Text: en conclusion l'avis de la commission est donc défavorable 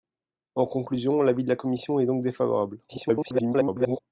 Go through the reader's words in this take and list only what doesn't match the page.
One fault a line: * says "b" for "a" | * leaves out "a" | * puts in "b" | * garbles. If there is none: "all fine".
* garbles